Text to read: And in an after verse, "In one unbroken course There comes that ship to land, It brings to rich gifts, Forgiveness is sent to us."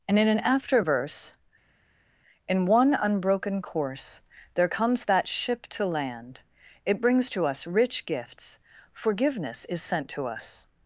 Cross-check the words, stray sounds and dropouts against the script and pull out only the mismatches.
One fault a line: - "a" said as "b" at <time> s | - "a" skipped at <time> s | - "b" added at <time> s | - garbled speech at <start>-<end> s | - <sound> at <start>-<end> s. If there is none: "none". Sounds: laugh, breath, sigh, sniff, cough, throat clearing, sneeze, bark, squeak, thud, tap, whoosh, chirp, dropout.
- "us" added at 7.4 s